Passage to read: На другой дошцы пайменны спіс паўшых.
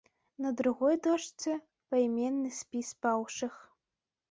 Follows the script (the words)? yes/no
yes